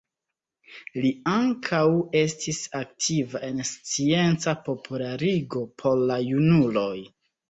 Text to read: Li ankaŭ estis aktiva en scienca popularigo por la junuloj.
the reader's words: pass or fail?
pass